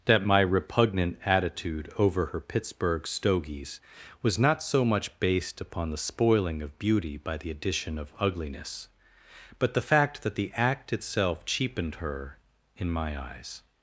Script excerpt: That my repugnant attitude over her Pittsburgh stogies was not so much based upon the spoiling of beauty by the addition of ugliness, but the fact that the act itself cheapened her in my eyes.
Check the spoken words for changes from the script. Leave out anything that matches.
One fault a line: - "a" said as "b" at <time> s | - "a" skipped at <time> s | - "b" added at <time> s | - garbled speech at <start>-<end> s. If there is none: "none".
none